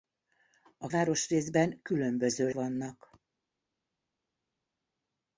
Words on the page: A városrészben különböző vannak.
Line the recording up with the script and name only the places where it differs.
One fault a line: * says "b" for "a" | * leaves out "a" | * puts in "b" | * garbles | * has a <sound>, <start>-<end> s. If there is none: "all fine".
all fine